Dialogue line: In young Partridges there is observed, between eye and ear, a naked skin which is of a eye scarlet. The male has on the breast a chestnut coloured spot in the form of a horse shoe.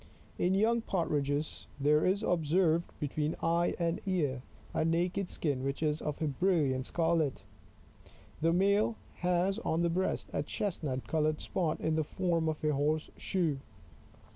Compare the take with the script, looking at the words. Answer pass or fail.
fail